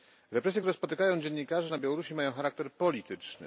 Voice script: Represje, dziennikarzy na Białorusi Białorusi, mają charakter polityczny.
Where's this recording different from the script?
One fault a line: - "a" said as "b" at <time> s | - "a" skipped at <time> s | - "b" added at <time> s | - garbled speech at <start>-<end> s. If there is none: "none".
- "które spotykają" added at 0.6 s
- "Białorusi" skipped at 2.1 s